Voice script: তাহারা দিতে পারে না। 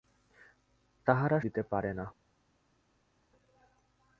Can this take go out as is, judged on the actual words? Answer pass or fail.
pass